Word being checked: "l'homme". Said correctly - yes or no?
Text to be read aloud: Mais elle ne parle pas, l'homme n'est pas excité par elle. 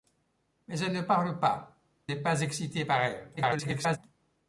no